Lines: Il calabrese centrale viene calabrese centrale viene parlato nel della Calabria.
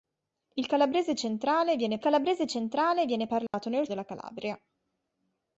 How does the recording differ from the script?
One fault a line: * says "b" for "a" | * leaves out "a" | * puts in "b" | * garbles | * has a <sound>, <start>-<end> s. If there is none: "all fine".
* has a dropout, 3.5-3.5 s